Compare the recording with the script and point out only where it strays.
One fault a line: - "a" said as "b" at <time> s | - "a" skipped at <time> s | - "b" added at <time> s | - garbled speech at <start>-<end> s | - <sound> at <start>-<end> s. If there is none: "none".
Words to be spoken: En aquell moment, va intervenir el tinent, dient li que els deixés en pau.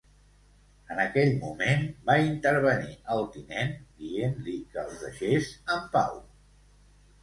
none